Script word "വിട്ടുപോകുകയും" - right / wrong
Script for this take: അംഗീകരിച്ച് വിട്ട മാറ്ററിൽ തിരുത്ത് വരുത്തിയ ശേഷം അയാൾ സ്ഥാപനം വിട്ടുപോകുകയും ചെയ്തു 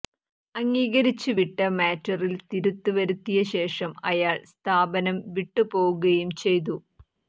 right